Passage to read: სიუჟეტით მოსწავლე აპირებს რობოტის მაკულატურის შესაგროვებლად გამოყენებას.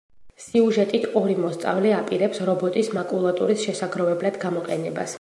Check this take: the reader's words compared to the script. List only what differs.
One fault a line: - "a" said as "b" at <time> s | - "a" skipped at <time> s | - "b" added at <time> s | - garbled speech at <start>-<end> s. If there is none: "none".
- "ორი" added at 1.2 s